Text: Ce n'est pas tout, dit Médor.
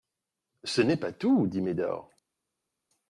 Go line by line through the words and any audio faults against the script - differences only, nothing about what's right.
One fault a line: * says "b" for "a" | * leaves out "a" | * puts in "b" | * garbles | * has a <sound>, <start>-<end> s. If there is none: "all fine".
all fine